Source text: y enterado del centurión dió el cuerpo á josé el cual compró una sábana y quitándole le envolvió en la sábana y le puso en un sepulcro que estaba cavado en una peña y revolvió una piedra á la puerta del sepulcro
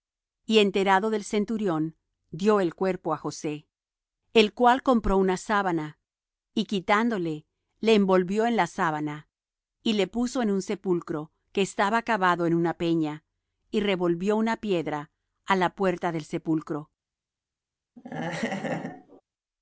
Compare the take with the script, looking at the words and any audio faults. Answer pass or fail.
fail